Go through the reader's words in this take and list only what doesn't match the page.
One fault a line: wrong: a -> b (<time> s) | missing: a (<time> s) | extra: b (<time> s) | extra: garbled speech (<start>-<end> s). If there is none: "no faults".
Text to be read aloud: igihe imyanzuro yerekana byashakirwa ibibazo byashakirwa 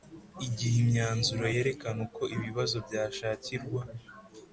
wrong: byashakirwa -> uko (2.1 s)